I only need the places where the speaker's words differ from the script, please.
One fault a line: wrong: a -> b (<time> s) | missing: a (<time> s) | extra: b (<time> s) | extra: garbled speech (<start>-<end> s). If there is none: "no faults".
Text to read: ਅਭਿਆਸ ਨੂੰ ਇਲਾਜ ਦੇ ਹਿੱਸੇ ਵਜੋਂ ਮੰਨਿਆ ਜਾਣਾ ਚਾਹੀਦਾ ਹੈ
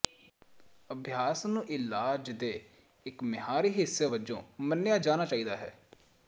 extra: ਇੱਕ ਮਿਆਰੀ (3.0 s)